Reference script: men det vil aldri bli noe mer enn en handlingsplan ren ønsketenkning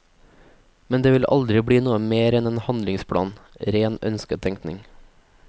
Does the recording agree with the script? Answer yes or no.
yes